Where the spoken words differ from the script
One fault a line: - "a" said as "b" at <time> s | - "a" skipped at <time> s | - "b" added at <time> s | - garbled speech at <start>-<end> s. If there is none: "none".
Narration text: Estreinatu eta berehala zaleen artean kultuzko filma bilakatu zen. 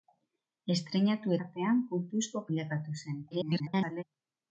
- "eta berehala zaleen" skipped at 1.4 s
- "filma" skipped at 2.4 s
- garbled speech at 3.3-4.0 s